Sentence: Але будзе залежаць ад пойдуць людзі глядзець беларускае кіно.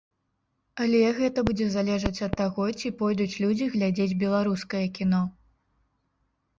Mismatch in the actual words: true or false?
true